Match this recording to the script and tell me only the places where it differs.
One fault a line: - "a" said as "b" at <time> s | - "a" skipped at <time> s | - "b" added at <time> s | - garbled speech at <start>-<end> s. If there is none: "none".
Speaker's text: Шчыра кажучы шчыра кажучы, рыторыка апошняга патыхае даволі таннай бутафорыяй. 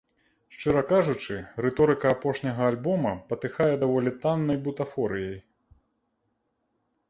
- "шчыра кажучы" skipped at 1.4 s
- "альбома" added at 2.7 s